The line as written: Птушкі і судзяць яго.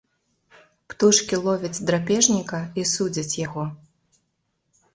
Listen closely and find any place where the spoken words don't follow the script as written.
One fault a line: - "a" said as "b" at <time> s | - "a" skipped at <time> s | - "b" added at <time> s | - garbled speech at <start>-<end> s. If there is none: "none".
- "ловяць драпежніка" added at 1.5 s